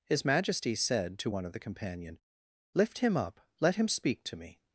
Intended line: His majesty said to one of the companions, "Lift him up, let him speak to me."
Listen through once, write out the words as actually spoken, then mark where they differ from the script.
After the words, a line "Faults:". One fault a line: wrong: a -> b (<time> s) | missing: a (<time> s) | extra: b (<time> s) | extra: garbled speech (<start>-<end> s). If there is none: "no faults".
His majesty said to one of the companion, "Lift him up, let him speak to me."
Faults:
wrong: companions -> companion (1.6 s)